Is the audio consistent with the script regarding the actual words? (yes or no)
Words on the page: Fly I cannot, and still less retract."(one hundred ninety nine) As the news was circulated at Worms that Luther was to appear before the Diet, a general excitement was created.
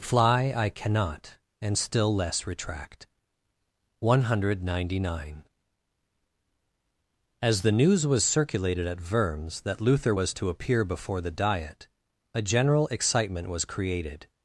yes